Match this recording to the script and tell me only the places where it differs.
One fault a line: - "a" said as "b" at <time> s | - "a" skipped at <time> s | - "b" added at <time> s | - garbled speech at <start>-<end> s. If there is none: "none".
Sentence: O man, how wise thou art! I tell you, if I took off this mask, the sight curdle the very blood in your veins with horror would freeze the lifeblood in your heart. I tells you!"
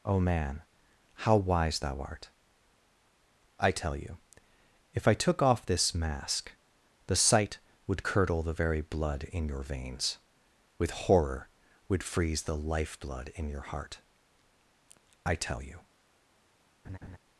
- "would" added at 7.8 s
- "tells" said as "tell" at 15.3 s